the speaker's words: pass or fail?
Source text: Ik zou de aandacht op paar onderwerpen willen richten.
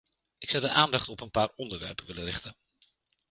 fail